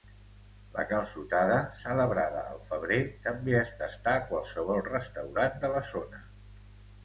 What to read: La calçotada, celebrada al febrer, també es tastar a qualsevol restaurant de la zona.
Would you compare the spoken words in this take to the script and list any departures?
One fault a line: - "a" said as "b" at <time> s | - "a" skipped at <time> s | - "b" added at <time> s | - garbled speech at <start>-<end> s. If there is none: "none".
none